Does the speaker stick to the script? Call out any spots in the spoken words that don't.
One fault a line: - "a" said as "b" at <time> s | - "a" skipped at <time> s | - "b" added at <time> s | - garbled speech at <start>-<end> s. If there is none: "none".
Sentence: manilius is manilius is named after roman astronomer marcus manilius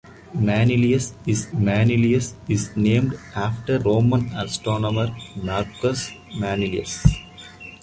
none